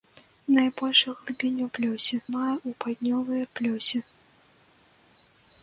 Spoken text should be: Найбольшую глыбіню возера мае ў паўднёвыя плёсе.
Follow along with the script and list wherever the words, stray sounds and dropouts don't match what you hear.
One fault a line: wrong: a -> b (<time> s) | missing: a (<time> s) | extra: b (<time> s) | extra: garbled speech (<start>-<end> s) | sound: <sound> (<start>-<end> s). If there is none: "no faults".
wrong: возера -> плёсе (1.8 s)